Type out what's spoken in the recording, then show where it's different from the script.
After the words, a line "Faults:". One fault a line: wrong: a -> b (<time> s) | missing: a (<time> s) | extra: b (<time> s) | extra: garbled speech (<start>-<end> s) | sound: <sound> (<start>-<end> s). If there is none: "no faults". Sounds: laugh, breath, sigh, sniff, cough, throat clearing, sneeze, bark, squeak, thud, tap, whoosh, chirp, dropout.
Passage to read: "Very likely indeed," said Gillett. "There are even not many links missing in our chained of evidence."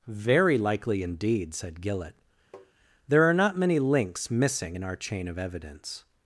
"Very likely indeed," said Gillett. "There are not many links missing in our chain of evidence."
Faults:
sound: tap (2.5-2.7 s)
missing: even (3.3 s)
wrong: chained -> chain (5.0 s)